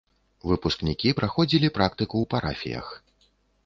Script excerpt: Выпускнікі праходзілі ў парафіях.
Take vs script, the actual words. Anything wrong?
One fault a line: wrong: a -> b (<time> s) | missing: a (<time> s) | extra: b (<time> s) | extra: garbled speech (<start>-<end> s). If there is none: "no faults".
extra: практыку (1.8 s)